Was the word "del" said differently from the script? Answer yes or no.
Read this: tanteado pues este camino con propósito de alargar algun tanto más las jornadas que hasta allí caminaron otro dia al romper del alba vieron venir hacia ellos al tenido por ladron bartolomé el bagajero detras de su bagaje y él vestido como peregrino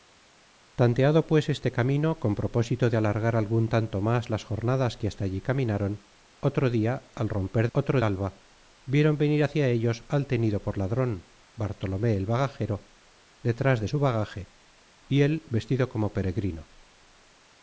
yes